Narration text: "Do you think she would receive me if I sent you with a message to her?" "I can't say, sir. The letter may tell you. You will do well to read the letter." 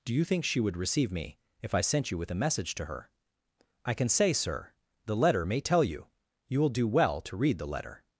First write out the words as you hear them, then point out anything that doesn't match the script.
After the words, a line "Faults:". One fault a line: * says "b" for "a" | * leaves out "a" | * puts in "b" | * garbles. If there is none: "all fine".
"Do you think she would receive me if I sent you with a message to her?" "I can say, sir. The letter may tell you. You will do well to read the letter."
Faults:
* says "can" for "can't"